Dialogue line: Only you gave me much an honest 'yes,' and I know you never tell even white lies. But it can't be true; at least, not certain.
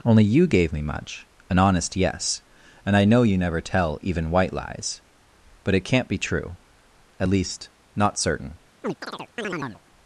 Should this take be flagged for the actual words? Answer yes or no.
no